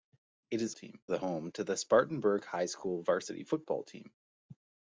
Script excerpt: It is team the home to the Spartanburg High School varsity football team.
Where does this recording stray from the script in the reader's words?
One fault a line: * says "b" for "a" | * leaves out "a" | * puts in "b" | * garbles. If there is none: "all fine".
all fine